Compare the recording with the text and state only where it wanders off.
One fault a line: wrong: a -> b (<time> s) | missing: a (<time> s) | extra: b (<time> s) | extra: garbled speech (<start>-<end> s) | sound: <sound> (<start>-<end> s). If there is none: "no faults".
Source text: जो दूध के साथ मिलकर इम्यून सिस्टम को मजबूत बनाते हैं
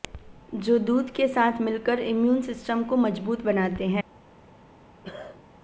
sound: cough (5.0-5.4 s)